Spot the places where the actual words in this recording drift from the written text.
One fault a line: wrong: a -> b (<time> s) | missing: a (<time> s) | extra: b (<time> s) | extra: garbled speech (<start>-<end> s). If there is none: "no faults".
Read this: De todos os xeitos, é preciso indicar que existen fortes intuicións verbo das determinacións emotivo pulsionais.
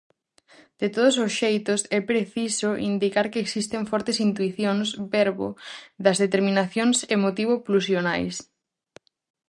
no faults